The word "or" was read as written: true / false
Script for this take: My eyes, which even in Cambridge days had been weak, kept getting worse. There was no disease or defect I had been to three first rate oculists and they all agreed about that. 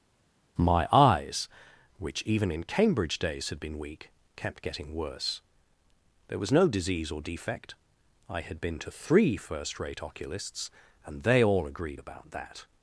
true